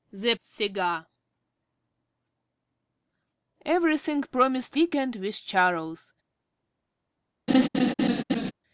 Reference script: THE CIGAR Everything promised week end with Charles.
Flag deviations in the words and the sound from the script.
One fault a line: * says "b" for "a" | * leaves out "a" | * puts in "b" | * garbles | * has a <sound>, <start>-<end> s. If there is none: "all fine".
* has a laugh, 7.5-8.5 s